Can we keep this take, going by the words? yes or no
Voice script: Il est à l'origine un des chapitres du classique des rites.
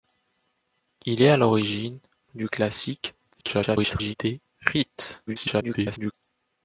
no